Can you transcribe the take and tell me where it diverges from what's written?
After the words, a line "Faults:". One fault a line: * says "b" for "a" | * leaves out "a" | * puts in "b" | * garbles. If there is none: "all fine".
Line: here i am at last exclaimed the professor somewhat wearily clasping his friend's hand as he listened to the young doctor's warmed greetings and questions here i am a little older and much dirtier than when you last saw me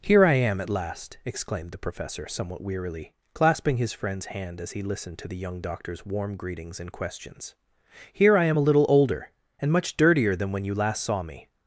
here i am at last exclaimed the professor somewhat wearily clasping his friend's hand as he listened to the young doctor's warm greetings and questions here i am a little older and much dirtier than when you last saw me
Faults:
* says "warm" for "warmed"